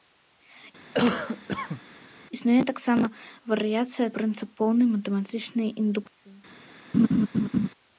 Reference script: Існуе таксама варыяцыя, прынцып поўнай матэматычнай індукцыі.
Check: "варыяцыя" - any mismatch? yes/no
no